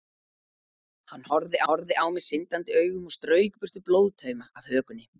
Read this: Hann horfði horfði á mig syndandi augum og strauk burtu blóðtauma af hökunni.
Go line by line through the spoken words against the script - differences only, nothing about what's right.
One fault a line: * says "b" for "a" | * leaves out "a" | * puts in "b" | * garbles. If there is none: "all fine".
all fine